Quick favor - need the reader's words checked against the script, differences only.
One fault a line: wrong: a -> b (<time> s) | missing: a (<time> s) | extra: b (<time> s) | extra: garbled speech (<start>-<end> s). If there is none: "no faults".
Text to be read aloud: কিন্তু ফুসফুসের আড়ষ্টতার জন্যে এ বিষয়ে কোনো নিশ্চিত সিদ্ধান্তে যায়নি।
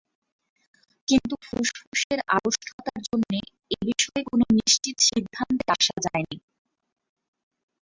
extra: আসা (5.7 s)